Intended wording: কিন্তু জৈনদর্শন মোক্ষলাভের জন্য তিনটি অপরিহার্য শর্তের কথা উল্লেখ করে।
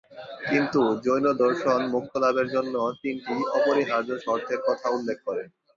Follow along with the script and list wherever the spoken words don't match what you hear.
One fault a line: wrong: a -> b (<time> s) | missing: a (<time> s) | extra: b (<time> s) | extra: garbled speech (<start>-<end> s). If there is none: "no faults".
no faults